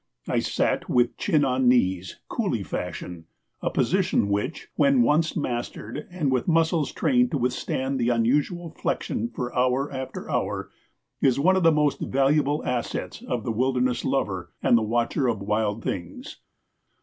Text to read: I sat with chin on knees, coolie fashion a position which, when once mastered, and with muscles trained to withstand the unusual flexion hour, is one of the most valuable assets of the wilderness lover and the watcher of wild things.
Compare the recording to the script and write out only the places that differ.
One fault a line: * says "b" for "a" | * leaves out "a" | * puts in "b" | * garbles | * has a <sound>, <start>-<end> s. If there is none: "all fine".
* puts in "for hour after"